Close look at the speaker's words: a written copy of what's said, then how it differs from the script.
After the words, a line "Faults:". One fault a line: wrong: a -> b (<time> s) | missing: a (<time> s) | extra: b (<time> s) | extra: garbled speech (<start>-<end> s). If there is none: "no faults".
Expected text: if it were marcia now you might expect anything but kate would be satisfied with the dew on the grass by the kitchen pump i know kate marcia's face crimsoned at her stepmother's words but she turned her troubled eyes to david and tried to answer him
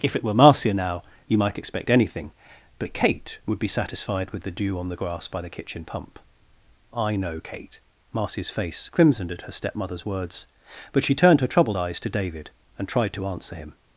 if it were marcia now you might expect anything but kate would be satisfied with the dew on the grass by the kitchen pump i know kate marcia's face crimsoned at her stepmother's words but she turned her troubled eyes to david and tried to answer him
Faults:
no faults